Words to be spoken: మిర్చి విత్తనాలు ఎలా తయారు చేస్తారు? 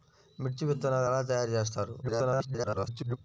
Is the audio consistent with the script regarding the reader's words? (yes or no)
no